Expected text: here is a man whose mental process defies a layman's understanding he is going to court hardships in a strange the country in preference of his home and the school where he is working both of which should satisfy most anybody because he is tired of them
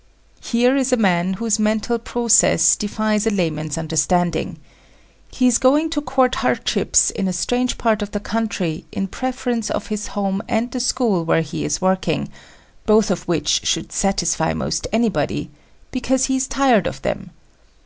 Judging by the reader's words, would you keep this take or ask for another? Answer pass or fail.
fail